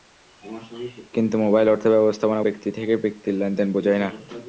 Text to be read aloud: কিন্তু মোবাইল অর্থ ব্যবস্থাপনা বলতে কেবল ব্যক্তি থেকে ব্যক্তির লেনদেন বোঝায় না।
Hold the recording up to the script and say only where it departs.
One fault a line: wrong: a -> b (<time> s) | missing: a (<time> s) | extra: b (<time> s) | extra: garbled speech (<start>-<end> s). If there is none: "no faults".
missing: বলতে কেবল (2.4 s)